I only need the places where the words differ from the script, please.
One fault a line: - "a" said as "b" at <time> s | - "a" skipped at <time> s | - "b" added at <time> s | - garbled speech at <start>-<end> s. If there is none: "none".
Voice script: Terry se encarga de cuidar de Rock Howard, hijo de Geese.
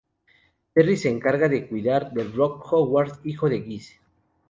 none